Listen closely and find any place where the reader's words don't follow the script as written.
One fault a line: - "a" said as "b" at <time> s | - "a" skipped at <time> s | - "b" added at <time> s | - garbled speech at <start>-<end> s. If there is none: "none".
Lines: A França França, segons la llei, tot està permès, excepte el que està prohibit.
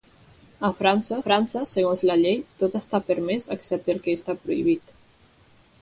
none